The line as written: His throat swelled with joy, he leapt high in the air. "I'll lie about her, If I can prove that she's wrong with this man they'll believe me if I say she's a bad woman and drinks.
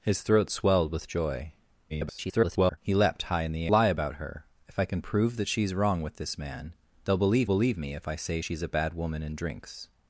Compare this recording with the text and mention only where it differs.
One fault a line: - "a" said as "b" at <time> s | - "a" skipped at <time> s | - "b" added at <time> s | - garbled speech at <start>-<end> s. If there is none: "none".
- garbled speech at 1.9-2.8 s
- "air I'll" skipped at 3.7 s
- "believe" added at 7.4 s